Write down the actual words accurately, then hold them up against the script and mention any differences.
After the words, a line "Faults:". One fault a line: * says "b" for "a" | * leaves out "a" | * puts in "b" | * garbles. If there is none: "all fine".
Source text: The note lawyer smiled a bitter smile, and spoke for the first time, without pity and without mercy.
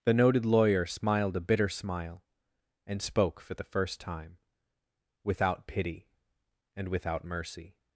The noted lawyer smiled a bitter smile, and spoke for the first time, without pity and without mercy.
Faults:
* says "noted" for "note"